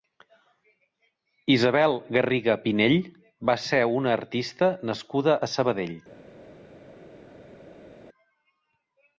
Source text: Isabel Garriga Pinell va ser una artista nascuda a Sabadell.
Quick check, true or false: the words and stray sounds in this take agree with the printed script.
true